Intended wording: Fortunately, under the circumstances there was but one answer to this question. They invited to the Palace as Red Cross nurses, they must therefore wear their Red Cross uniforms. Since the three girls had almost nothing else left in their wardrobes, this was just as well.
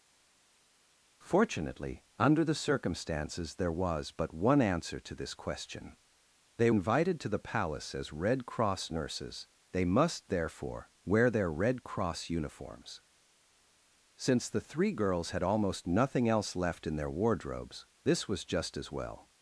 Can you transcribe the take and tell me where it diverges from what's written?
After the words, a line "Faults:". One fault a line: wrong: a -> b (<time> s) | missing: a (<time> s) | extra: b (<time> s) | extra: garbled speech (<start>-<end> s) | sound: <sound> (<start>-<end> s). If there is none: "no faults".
Fortunately, under the circumstances there was but one answer to this question. They invited to the Palace as Red Cross nurses, they must therefore wear their Red Cross uniforms. Since the three girls had almost nothing else left in their wardrobes, this was just as well.
Faults:
no faults